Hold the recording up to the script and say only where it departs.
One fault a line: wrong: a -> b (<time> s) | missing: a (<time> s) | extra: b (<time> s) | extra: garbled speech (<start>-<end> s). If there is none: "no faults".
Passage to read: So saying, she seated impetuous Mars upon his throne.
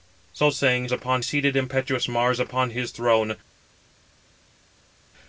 wrong: she -> upon (0.9 s)